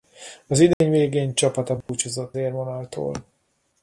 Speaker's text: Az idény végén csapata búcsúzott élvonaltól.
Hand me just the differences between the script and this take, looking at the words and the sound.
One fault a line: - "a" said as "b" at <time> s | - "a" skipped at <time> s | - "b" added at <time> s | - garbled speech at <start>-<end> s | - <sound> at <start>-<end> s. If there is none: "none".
- dropout at 0.7-0.8 s
- dropout at 1.8-1.9 s